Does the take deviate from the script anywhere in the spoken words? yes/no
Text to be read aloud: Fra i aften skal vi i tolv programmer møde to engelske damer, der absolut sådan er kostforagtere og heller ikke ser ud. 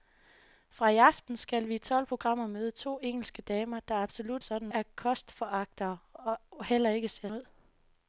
no